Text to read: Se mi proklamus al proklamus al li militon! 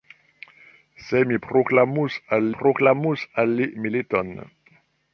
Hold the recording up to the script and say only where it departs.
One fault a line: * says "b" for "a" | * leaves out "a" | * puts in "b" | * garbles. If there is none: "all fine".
all fine